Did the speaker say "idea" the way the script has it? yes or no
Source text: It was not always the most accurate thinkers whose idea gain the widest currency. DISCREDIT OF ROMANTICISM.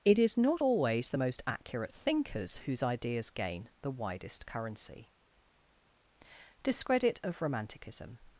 no